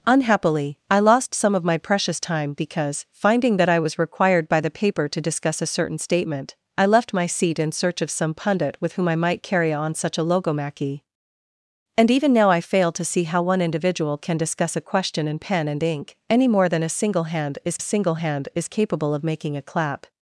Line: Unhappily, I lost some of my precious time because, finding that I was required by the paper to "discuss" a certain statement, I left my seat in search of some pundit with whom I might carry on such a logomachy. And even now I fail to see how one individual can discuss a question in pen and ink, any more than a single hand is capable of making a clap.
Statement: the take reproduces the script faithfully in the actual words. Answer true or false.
false